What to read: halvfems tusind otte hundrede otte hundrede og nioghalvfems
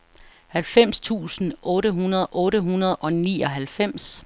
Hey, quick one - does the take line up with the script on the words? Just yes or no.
yes